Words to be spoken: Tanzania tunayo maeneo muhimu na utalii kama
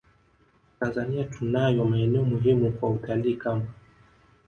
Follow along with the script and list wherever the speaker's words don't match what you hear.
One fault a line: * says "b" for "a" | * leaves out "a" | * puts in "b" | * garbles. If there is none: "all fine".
* says "kwa" for "na"